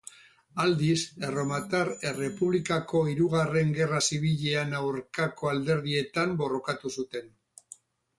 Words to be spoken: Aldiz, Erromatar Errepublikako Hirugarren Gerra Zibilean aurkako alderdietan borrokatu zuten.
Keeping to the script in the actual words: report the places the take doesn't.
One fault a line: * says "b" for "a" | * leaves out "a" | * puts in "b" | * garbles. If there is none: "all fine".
all fine